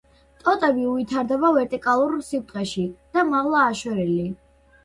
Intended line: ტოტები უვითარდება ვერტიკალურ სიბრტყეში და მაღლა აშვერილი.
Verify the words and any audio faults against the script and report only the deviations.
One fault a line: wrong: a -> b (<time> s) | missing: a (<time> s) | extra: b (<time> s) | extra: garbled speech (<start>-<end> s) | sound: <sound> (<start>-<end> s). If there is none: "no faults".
no faults